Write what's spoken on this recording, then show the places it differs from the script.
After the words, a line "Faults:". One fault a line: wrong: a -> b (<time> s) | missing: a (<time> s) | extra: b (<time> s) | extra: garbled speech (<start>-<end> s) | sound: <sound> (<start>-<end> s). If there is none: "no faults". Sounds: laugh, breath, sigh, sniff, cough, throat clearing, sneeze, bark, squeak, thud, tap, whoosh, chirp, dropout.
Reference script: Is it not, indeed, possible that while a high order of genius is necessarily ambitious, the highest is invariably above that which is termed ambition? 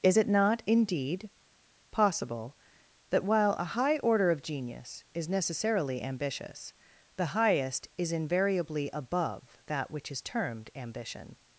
Is it not, indeed, possible that while a high order of genius is necessarily ambitious, the highest is invariably above that which is termed ambition?
Faults:
no faults